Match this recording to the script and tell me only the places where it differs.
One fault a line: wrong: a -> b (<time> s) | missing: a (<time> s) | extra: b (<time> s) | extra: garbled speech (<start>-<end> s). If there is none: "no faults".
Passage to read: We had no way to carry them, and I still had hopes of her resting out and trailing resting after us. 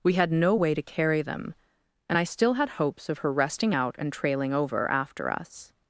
wrong: resting -> over (4.5 s)